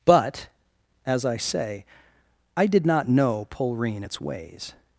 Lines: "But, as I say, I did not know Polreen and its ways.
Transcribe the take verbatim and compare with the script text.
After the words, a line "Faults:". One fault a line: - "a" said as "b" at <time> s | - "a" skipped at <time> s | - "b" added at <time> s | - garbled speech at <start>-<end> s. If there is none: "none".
"But, as I say, I did not know Polreen its ways.
Faults:
- "and" skipped at 4.0 s